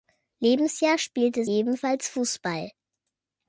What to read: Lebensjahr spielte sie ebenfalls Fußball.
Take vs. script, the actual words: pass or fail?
fail